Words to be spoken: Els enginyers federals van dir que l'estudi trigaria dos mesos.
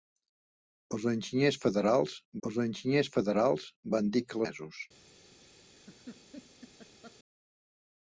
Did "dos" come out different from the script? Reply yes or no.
yes